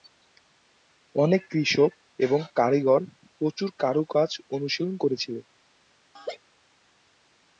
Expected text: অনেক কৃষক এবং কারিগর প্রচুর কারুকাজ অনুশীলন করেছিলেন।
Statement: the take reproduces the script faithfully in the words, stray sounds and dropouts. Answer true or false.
false